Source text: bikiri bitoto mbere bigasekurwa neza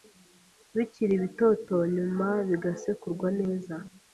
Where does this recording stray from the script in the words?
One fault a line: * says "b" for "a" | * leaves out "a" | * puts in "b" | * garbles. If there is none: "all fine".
* says "nyuma" for "mbere"